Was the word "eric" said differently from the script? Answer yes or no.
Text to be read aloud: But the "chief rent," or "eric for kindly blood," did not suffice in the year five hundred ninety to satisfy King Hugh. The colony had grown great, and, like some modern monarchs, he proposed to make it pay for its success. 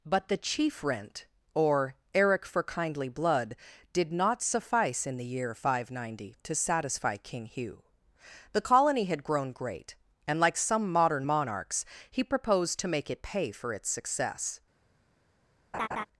no